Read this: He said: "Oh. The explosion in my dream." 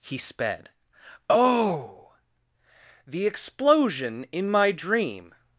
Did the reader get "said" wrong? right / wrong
wrong